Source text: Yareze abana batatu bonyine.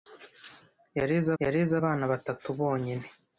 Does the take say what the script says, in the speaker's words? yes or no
no